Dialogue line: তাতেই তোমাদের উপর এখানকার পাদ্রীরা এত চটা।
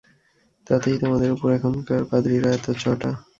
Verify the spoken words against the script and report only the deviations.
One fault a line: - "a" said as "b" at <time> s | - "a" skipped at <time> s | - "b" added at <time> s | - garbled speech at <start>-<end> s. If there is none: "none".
none